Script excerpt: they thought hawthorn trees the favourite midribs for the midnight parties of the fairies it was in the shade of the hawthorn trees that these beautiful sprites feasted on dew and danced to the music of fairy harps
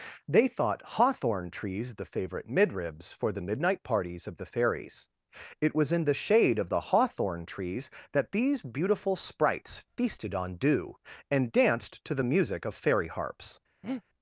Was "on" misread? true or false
false